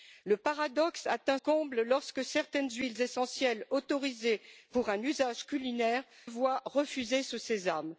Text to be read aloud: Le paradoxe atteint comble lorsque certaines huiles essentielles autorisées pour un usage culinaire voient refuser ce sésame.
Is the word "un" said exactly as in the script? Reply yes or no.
yes